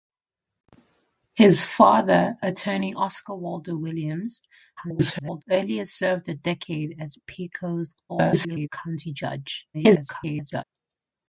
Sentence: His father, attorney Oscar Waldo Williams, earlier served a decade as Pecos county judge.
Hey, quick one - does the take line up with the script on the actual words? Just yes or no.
no